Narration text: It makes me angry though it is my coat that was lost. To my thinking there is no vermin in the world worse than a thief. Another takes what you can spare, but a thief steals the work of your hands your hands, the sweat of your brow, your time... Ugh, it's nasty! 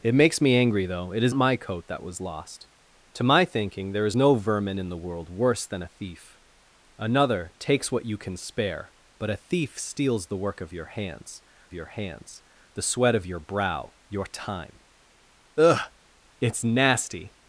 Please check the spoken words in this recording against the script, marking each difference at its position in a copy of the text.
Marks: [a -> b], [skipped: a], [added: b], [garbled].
It makes me angry though it is my coat that was lost. To my thinking there is no vermin in the world worse than a thief. Another takes what you can spare, but a thief steals the work of your hands your hands, the sweat of your brow, your time... Ugh, it's nasty!